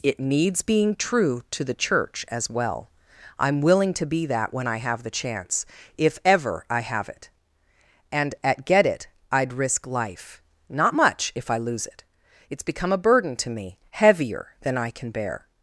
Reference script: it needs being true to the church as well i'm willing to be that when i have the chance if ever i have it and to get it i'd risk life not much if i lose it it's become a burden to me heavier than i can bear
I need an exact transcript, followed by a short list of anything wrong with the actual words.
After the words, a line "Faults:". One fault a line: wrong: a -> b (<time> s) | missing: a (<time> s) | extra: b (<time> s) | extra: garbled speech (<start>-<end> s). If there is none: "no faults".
it needs being true to the church as well i'm willing to be that when i have the chance if ever i have it and at get it i'd risk life not much if i lose it it's become a burden to me heavier than i can bear
Faults:
wrong: to -> at (8.4 s)